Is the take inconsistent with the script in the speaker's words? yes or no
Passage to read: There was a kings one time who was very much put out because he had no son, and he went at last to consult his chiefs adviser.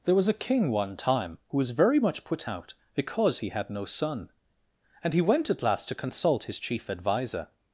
yes